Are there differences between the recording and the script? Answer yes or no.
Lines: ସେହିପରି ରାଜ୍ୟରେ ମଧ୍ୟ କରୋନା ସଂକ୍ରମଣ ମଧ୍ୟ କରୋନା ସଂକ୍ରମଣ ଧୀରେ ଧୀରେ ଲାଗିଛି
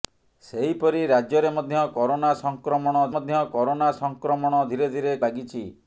no